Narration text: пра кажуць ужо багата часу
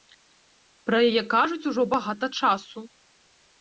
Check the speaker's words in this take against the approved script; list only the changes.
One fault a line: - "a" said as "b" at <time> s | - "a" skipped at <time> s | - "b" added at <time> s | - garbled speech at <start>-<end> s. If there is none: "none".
- "яе" added at 1.1 s